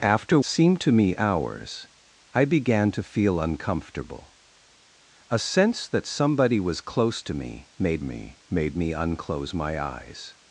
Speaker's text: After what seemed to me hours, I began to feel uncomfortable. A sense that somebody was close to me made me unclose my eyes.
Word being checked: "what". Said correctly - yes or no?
no